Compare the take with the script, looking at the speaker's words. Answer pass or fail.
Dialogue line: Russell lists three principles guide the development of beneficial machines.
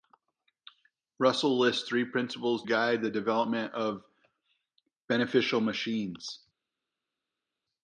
pass